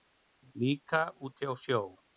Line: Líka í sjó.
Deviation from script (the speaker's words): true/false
true